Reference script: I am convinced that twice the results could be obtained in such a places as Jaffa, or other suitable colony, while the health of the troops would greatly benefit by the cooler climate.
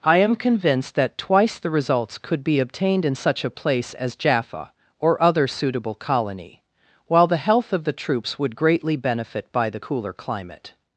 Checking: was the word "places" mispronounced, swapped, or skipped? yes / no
yes